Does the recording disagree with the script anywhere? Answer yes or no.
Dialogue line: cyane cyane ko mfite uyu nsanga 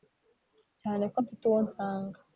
yes